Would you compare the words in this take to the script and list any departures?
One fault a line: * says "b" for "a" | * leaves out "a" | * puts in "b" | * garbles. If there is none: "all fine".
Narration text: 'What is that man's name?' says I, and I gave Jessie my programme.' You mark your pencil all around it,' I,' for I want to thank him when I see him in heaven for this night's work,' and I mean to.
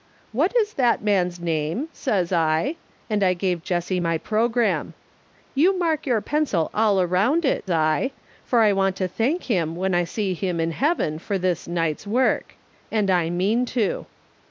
all fine